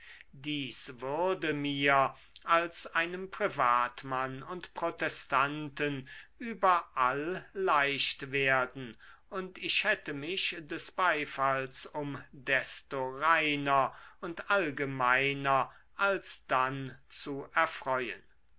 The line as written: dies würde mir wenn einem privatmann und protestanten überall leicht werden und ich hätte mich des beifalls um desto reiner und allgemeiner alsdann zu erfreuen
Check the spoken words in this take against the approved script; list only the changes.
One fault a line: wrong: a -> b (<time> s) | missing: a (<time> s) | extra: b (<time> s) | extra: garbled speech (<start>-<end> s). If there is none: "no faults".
wrong: wenn -> als (2.4 s)